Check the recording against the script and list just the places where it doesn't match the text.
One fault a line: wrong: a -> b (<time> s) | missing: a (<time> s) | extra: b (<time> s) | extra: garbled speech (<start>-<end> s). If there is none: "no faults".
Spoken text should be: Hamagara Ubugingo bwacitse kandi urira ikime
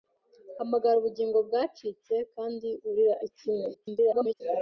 extra: garbled speech (3.7-4.4 s)